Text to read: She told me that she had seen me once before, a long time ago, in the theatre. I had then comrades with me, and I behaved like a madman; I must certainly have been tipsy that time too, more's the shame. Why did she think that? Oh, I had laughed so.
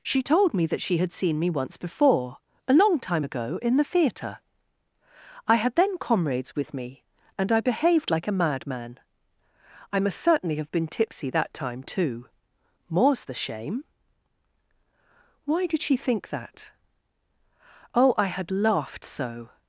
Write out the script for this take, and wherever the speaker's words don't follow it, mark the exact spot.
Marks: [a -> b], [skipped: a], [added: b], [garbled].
She told me that she had seen me once before, a long time ago, in the theatre. I had then comrades with me, and I behaved like a madman; I must certainly have been tipsy that time too, more's the shame. Why did she think that? Oh, I had laughed so.